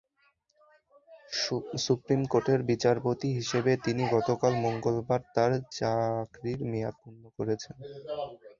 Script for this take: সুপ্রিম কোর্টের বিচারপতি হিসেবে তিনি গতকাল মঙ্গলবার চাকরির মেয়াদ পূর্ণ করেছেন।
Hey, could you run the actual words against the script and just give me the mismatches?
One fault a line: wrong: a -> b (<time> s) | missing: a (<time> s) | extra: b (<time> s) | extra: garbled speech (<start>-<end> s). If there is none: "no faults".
extra: তাঁর (5.3 s)